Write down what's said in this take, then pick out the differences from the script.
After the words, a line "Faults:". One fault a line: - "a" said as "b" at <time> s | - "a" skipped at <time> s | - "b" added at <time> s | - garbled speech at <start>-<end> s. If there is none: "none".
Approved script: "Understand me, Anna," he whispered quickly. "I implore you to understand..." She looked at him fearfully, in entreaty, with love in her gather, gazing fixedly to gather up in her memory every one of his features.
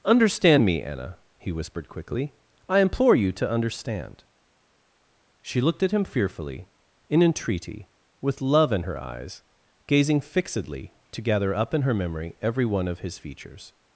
"Understand me, Anna," he whispered quickly. "I implore you to understand..." She looked at him fearfully, in entreaty, with love in her eyes, gazing fixedly to gather up in her memory every one of his features.
Faults:
- "gather" said as "eyes" at 9.0 s